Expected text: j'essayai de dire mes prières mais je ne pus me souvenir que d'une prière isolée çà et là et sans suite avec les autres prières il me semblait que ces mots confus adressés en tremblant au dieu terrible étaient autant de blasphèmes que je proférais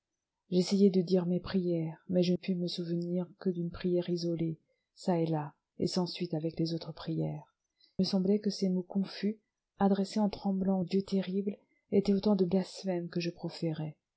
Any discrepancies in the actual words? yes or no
yes